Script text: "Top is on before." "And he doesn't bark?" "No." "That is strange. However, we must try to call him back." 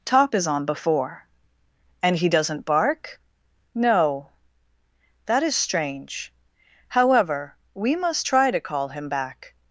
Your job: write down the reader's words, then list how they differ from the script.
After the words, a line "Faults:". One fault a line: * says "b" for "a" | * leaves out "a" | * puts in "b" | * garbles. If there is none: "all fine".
"Top is on before." "And he doesn't bark?" "No." "That is strange. However, we must try to call him back."
Faults:
all fine